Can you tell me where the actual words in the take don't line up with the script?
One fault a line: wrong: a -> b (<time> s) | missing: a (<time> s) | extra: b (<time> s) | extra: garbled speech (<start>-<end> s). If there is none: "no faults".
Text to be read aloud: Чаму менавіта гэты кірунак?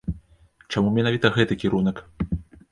no faults